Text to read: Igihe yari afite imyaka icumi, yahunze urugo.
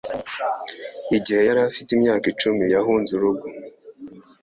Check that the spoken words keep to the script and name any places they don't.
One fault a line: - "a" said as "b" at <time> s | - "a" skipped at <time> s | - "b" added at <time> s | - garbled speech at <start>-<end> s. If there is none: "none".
none